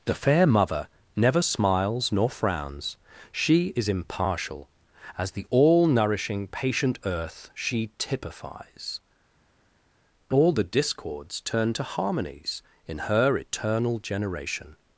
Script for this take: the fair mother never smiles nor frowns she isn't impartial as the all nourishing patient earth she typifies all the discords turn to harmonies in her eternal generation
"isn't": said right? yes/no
no